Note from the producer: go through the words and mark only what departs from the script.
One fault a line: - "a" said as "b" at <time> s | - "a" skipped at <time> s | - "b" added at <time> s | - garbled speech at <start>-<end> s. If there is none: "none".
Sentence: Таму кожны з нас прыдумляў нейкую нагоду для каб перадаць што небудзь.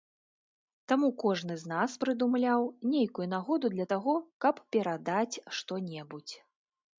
- "таго" added at 4.0 s